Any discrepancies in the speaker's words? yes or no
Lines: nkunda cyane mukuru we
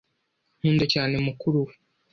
no